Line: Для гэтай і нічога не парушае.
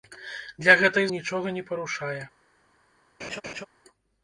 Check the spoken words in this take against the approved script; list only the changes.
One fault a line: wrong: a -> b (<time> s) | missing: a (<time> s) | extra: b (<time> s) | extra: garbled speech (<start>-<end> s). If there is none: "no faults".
no faults